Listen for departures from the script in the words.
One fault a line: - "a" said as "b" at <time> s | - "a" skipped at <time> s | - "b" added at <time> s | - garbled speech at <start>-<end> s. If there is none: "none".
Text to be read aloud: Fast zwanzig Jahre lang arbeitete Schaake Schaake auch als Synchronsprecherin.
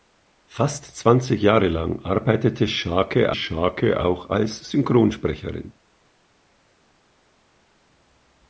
none